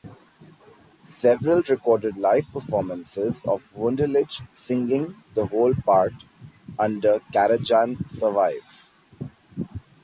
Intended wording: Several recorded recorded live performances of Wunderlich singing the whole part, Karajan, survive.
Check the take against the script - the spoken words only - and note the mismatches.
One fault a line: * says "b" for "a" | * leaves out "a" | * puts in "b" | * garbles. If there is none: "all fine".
* leaves out "recorded"
* puts in "under"